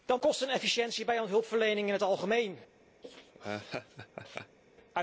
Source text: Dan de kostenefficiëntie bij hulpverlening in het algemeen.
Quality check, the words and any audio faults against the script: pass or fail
fail